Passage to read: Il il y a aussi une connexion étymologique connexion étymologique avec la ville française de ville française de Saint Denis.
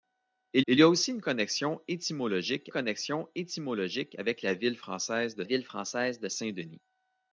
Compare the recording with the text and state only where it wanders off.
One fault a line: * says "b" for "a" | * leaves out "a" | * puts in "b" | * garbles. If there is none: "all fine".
all fine